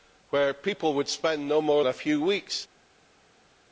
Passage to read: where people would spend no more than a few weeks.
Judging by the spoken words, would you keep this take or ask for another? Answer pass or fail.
fail